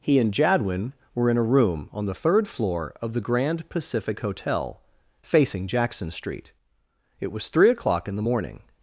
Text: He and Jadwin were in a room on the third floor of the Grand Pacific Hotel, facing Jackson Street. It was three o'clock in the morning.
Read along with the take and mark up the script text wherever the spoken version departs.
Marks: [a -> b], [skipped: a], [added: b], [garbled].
He and Jadwin were in a room on the third floor of the Grand Pacific Hotel, facing Jackson Street. It was three o'clock in the morning.